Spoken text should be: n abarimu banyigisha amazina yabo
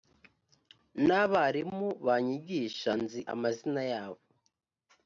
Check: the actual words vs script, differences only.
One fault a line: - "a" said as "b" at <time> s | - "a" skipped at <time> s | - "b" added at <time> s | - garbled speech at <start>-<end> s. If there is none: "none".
- "nzi" added at 3.0 s